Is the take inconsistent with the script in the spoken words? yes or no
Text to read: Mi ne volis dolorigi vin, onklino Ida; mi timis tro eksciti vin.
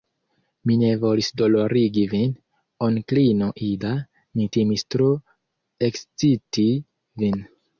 no